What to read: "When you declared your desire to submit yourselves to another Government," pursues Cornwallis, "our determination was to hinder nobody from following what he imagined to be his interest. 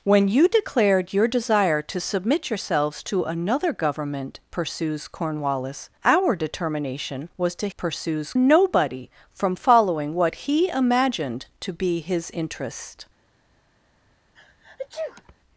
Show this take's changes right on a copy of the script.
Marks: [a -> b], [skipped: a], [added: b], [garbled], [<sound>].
"When you declared your desire to submit yourselves to another Government," pursues Cornwallis, "our determination was to [hinder -> pursues] nobody from following what he imagined to be his interest. [sneeze]